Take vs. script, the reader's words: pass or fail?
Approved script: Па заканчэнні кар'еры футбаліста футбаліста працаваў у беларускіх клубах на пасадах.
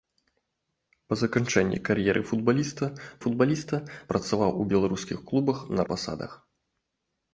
pass